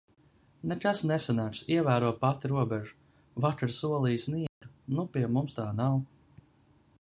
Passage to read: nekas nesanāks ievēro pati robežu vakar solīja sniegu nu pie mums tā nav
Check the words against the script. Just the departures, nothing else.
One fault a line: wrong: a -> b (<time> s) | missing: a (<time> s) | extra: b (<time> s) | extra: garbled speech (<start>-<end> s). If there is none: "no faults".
no faults